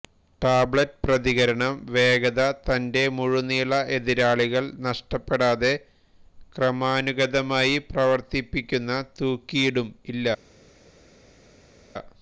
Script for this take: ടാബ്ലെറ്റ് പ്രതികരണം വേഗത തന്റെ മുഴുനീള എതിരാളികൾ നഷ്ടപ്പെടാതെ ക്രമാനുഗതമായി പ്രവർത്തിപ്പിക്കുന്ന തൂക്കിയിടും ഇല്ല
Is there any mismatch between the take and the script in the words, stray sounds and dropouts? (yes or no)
no